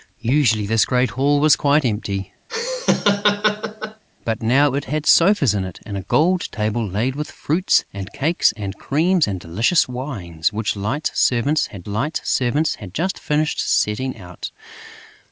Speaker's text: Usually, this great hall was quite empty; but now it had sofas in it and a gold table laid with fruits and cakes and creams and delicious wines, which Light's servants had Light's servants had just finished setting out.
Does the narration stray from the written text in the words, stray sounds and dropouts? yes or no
yes